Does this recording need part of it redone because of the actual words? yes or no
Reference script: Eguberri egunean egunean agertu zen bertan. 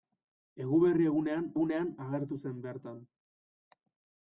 no